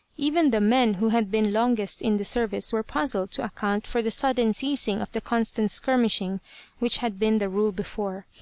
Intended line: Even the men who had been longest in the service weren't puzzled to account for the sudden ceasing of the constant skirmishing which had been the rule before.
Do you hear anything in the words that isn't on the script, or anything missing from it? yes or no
yes